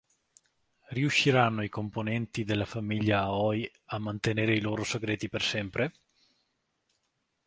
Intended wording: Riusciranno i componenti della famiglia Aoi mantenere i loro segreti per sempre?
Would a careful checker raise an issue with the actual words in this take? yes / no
yes